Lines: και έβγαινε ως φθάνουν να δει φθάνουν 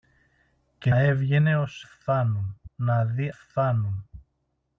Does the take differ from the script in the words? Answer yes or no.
no